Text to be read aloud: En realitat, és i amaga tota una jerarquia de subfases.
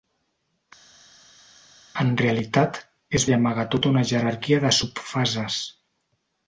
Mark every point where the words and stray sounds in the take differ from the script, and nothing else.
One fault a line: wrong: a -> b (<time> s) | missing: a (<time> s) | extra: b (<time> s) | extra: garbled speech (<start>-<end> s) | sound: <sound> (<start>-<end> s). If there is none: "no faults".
no faults